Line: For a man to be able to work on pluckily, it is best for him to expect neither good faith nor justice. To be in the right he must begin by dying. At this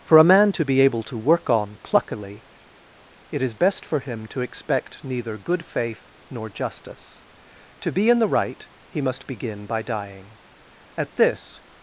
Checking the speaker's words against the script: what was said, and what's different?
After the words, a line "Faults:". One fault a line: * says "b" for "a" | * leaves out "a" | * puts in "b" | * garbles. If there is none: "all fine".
For a man to be able to work on pluckily, it is best for him to expect neither good faith nor justice. To be in the right he must begin by dying. At this
Faults:
all fine